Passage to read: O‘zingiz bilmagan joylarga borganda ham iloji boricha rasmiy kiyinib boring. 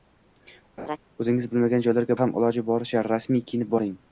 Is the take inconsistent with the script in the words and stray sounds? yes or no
yes